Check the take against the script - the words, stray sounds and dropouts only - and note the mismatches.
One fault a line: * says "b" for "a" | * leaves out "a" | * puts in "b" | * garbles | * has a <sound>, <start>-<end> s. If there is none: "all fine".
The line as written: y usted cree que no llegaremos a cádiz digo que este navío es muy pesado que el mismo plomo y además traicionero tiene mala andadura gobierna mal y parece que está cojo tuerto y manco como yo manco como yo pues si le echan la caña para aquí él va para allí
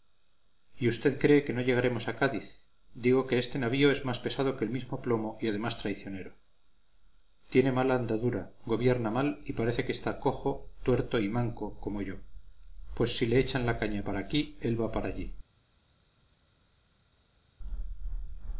* says "más" for "muy"
* leaves out "manco como yo"